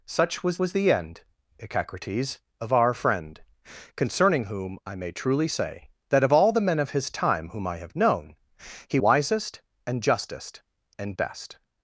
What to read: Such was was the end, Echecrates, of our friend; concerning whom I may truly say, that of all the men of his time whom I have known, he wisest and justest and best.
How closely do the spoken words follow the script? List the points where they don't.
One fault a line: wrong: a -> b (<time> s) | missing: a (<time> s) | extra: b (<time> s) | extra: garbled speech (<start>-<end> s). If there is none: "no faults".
no faults